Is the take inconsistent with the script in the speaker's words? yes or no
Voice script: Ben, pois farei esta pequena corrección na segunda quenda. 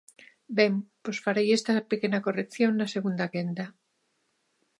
no